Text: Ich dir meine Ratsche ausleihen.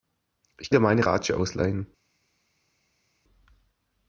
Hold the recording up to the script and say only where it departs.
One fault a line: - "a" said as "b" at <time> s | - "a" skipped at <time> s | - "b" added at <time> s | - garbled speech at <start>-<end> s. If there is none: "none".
none